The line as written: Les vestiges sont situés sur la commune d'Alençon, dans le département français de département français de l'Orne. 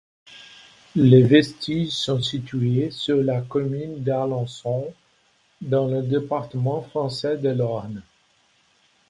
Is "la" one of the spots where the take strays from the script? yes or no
no